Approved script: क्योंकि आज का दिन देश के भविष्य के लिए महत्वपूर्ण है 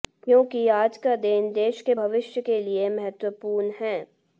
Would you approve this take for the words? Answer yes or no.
yes